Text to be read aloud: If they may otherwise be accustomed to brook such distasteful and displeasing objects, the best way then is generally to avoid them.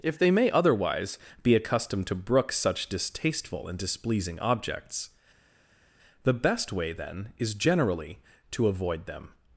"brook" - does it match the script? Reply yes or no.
yes